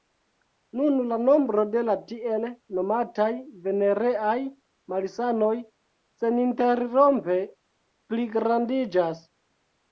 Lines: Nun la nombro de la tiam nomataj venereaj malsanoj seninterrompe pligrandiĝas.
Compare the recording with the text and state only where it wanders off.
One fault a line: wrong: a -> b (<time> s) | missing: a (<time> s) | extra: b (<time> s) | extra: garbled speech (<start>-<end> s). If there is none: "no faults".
wrong: tiam -> tiel (2.1 s)